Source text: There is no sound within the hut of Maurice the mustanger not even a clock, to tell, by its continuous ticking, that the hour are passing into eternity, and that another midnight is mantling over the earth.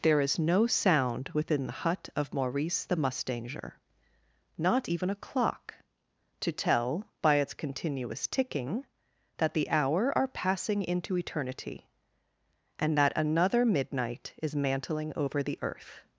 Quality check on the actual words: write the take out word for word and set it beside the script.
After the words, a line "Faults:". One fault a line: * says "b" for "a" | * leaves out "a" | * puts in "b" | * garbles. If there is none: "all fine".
There is no sound within the hut of Maurice the mustanger not even a clock, to tell, by its continuous ticking, that the hour are passing into eternity, and that another midnight is mantling over the earth.
Faults:
all fine